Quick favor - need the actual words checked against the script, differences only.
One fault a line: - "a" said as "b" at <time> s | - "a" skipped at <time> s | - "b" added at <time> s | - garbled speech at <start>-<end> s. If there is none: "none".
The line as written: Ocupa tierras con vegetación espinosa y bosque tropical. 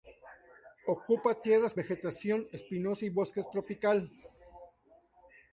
- "con" skipped at 1.8 s